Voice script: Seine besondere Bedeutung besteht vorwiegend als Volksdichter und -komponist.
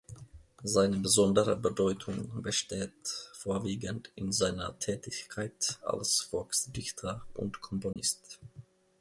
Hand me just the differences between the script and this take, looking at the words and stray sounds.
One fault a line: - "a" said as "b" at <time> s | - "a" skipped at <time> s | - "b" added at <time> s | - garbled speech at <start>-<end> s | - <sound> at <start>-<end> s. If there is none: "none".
- "in seiner Tätigkeit" added at 4.1 s
- dropout at 7.9-8.0 s